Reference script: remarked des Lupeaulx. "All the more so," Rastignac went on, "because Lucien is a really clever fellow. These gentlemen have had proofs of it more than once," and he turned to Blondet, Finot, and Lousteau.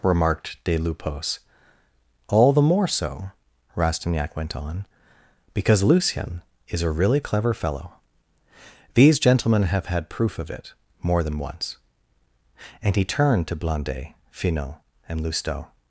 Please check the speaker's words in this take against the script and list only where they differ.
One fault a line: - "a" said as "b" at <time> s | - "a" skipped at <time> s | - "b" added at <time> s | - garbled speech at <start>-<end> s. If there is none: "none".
- "proofs" said as "proof" at 10.1 s